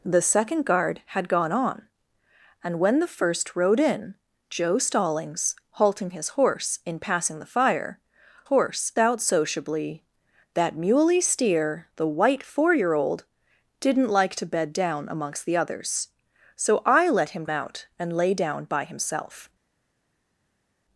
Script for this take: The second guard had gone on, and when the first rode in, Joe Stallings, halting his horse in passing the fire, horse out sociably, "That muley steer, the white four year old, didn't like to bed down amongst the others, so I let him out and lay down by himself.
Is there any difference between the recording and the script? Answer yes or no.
no